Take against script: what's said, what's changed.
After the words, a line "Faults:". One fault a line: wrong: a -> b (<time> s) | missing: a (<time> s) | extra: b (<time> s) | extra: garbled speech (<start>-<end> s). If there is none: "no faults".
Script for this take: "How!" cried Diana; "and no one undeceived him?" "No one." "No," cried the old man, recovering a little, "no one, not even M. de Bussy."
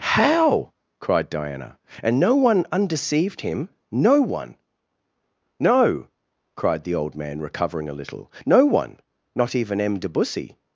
"How!" cried Diana; "and no one undeceived him?" "No one." "No," cried the old man, recovering a little, "no one, not even M. de Bussy."
Faults:
no faults